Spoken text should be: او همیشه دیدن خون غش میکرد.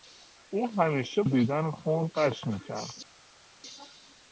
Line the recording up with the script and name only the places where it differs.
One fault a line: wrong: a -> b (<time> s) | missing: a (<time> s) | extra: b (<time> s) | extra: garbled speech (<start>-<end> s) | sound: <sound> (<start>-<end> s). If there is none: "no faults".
no faults